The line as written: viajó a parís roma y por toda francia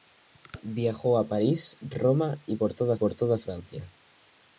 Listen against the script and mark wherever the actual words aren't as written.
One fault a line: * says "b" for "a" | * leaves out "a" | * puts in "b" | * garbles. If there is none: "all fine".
* puts in "por toda"